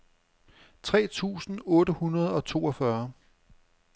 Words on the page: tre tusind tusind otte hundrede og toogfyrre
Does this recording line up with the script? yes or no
no